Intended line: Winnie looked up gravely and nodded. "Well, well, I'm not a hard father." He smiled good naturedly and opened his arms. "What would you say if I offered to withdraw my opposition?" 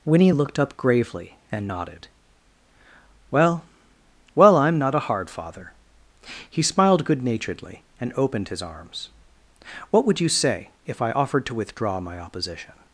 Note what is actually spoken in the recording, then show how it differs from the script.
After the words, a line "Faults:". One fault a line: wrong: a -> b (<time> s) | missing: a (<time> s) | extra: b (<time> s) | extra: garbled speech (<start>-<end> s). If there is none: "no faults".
Winnie looked up gravely and nodded. "Well, well, I'm not a hard father." He smiled good naturedly and opened his arms. "What would you say if I offered to withdraw my opposition?"
Faults:
no faults